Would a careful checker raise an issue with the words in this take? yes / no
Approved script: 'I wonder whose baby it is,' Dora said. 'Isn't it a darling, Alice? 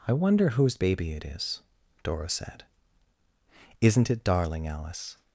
yes